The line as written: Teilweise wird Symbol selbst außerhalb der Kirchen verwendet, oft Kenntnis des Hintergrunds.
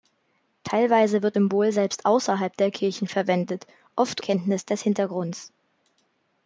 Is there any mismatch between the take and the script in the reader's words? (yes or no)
no